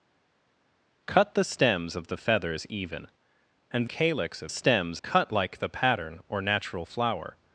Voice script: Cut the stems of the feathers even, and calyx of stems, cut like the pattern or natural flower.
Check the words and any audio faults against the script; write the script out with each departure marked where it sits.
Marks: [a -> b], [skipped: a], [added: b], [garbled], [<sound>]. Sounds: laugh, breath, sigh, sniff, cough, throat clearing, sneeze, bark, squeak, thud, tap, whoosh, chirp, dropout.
Cut the stems of the feathers even, and calyx of stems, cut like the pattern or natural flower.